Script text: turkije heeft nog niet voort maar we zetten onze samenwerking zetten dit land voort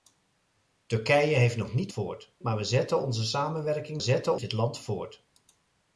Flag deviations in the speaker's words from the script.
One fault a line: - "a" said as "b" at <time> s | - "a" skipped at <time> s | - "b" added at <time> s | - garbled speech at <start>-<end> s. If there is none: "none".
none